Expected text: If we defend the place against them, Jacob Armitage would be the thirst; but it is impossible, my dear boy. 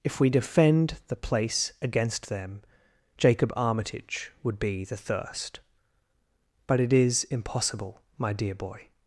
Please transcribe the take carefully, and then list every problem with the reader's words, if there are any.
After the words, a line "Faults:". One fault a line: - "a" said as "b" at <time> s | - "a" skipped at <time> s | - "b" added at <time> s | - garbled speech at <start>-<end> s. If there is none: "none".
If we defend the place against them, Jacob Armitage would be the thirst; but it is impossible, my dear boy.
Faults:
none